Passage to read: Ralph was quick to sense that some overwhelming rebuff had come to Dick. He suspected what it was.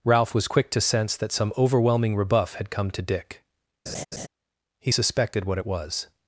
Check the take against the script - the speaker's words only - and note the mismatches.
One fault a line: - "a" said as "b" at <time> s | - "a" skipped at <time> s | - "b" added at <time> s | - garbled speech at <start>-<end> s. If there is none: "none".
none